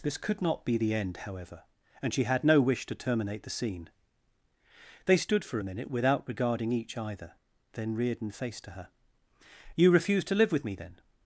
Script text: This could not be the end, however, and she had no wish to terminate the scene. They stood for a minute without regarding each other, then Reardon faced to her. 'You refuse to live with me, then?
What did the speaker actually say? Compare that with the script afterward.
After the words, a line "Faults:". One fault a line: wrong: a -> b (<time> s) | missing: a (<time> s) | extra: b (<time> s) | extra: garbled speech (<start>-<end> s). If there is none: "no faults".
This could not be the end, however, and she had no wish to terminate the scene. They stood for a minute without regarding each either, then Reardon faced to her. 'You refuse to live with me, then?
Faults:
wrong: other -> either (7.0 s)